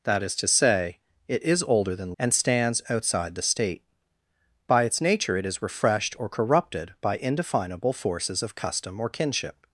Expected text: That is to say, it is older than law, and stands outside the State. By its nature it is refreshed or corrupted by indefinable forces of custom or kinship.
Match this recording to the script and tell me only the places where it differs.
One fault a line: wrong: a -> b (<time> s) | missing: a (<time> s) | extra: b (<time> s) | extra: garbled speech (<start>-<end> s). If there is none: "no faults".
missing: law (2.1 s)